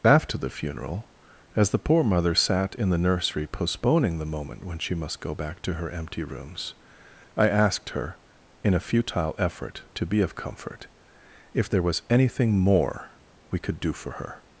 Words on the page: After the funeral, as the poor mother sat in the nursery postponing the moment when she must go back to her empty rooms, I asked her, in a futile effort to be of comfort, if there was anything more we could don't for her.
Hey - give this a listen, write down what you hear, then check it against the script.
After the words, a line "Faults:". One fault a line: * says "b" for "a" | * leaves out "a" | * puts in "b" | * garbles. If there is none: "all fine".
After the funeral, as the poor mother sat in the nursery postponing the moment when she must go back to her empty rooms, I asked her, in a futile effort to be of comfort, if there was anything more we could do for her.
Faults:
* says "do" for "don't"